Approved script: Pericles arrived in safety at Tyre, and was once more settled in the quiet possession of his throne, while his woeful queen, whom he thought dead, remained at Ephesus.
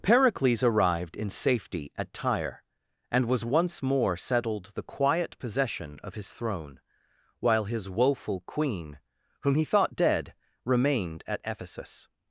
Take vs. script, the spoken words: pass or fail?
fail